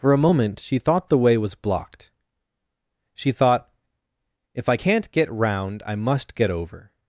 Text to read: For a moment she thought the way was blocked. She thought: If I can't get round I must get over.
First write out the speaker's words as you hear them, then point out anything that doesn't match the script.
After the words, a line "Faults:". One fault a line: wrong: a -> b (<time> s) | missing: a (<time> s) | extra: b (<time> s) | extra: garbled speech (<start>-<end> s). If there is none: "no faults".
For a moment she thought the way was blocked. She thought: If I can't get round I must get over.
Faults:
no faults